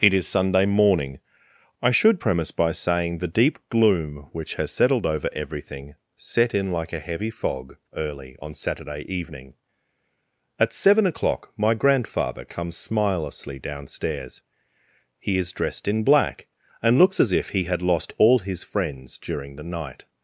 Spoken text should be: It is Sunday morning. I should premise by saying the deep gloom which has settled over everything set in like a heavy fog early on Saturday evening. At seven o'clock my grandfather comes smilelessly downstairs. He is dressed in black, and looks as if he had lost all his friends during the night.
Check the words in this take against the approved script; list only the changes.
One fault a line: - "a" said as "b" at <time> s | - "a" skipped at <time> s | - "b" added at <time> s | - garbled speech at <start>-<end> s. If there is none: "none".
none